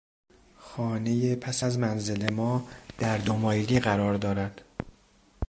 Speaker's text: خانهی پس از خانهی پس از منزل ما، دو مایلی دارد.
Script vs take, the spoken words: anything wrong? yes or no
yes